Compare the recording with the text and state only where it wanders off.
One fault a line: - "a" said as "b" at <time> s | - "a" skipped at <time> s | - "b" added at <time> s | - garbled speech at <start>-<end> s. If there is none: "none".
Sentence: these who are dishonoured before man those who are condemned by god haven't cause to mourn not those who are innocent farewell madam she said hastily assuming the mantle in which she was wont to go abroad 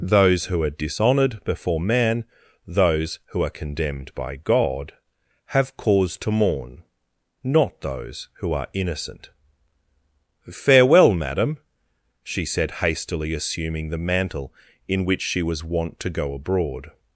- "these" said as "those" at 0.0 s
- "haven't" said as "have" at 5.5 s